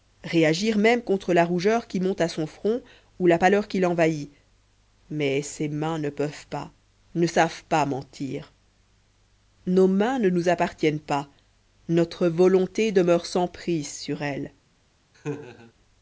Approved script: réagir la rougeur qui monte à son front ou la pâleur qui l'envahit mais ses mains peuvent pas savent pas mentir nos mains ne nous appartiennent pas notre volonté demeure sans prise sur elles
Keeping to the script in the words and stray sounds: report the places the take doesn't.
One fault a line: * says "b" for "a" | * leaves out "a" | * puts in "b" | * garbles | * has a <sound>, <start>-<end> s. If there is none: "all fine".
* puts in "même contre"
* puts in "ne"
* puts in "ne"
* has a laugh, 15.1-15.7 s